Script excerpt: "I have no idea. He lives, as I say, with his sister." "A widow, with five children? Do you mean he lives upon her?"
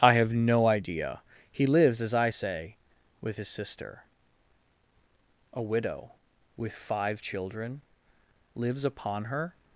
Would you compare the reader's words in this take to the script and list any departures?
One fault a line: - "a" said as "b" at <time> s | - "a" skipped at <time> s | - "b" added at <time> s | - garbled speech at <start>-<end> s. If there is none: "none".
- "Do you mean he" skipped at 7.8 s